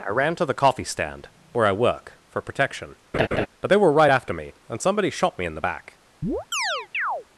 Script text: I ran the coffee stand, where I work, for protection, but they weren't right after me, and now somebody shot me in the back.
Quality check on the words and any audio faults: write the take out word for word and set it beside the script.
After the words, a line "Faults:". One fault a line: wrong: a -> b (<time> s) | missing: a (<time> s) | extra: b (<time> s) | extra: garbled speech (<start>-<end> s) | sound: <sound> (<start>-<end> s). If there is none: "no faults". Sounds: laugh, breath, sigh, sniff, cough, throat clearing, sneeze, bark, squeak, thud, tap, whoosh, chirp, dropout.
I ran to the coffee stand, where I work, for protection, but they were right after me, and somebody shot me in the back.
Faults:
extra: to (0.3 s)
sound: laugh (3.1-3.5 s)
wrong: weren't -> were (3.8 s)
missing: now (4.8 s)
sound: chirp (6.2-7.2 s)